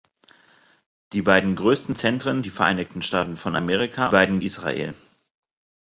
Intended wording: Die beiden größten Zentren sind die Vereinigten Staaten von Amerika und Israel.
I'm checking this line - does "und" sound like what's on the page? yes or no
no